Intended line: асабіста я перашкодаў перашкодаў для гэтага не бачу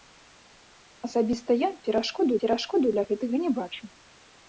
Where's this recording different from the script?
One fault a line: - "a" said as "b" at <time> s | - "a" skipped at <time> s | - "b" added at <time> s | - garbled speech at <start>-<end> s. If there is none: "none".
none